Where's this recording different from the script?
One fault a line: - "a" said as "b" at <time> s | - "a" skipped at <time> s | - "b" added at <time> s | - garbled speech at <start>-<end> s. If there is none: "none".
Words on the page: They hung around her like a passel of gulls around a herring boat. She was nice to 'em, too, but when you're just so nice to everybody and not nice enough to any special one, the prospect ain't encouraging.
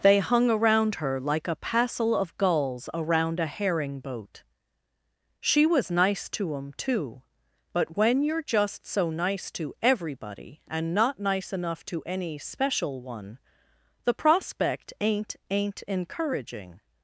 - "ain't" added at 15.5 s